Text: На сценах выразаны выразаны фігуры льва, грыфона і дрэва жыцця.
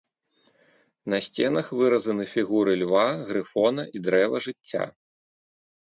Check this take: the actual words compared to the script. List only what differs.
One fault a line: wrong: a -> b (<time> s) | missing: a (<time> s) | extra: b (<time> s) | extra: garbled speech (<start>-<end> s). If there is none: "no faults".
missing: выразаны (2.2 s)